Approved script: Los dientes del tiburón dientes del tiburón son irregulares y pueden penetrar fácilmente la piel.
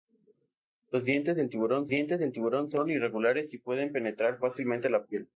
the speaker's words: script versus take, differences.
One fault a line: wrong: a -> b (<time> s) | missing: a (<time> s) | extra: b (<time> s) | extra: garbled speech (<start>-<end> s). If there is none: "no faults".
no faults